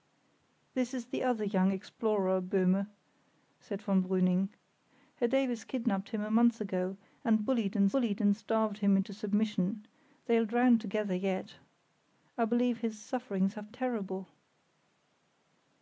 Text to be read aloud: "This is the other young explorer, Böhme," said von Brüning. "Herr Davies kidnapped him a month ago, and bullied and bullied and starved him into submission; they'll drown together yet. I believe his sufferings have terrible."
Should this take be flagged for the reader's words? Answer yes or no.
no